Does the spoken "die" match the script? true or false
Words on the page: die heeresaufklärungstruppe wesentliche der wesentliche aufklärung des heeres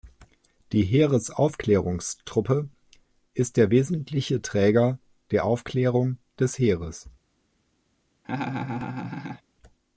true